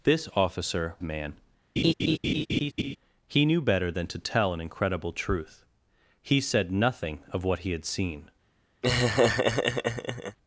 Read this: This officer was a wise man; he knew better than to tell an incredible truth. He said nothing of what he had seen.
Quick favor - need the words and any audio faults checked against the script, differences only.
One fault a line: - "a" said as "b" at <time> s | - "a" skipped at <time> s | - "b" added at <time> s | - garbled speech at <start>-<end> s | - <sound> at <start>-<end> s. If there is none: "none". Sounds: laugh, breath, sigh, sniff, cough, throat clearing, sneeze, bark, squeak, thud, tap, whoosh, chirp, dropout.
- "was a wise" skipped at 0.9 s
- laugh at 1.8-3.0 s
- laugh at 8.8-10.4 s